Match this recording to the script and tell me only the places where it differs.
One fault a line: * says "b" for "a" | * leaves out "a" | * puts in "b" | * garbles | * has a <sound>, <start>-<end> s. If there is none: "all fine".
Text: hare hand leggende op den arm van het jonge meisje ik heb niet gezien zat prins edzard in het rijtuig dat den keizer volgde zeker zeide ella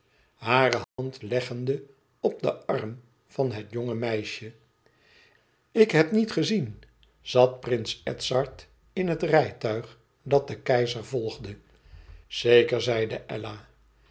* has a dropout, 0.8-1.0 s